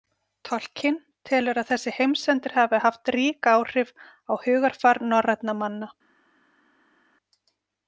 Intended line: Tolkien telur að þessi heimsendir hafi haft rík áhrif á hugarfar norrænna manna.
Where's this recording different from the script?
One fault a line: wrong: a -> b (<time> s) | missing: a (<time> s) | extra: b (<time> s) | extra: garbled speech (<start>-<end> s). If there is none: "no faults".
no faults